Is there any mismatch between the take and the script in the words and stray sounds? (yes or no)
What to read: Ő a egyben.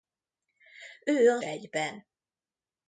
no